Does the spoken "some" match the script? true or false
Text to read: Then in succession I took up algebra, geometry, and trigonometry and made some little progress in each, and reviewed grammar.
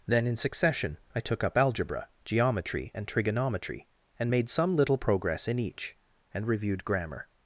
true